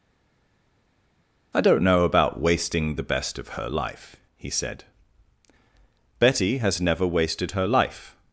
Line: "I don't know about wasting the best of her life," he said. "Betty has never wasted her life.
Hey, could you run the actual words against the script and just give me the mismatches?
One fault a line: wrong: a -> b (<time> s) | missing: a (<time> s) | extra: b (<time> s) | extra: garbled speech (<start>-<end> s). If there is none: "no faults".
no faults